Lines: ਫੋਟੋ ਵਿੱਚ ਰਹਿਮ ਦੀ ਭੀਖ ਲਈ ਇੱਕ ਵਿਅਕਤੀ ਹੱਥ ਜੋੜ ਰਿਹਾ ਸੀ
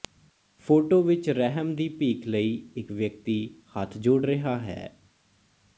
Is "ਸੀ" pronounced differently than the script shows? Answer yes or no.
yes